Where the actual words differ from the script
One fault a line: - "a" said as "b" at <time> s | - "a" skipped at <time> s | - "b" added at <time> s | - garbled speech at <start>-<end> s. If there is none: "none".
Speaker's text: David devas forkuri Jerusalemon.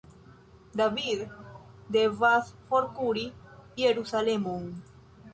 none